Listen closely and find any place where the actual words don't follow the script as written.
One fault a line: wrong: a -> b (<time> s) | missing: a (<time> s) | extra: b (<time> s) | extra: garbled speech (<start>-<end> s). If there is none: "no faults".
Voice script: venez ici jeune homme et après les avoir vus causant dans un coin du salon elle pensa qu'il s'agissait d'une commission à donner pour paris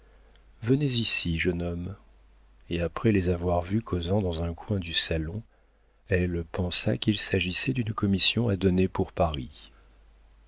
no faults